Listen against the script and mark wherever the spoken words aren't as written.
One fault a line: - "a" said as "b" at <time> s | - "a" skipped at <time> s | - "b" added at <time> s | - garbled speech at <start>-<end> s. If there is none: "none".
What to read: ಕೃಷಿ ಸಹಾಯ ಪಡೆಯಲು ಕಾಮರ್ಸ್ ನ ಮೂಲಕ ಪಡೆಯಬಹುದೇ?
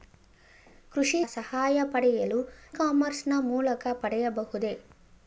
none